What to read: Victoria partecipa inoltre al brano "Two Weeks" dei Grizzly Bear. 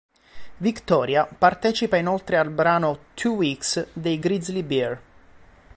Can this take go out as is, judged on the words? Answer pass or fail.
pass